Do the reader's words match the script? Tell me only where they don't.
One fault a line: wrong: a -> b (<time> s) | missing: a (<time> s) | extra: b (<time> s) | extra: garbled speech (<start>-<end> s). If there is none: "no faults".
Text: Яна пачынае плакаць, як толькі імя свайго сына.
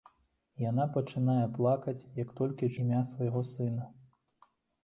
no faults